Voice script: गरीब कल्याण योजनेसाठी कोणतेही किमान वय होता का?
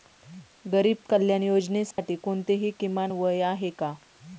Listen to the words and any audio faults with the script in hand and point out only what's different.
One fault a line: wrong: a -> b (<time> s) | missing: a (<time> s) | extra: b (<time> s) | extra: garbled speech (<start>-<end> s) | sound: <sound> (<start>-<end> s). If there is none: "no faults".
sound: dropout (1.9-2.0 s)
wrong: होता -> आहे (3.4 s)